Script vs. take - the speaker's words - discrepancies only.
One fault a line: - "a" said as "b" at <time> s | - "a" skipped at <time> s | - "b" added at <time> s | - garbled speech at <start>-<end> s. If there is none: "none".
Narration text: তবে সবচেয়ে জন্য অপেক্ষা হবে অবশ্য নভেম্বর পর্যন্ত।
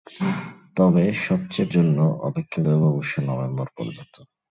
none